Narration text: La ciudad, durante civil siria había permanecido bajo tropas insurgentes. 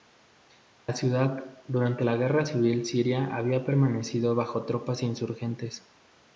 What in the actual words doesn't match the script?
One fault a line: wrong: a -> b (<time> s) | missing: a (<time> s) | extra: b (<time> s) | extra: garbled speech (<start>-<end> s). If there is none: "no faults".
extra: la Guerra (2.0 s)